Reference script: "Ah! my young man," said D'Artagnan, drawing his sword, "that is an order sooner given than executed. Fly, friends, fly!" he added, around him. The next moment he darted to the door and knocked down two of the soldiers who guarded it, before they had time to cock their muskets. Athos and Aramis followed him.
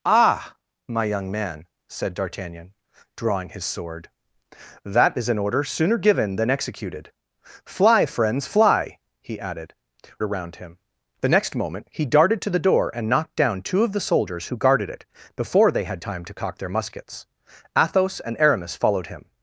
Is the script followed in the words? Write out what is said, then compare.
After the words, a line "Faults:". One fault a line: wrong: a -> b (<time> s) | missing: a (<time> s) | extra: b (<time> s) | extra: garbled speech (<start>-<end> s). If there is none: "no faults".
"Ah! my young man," said D'Artagnan, drawing his sword, "that is an order sooner given than executed. Fly, friends, fly!" he added, around him. The next moment he darted to the door and knocked down two of the soldiers who guarded it, before they had time to cock their muskets. Athos and Aramis followed him.
Faults:
no faults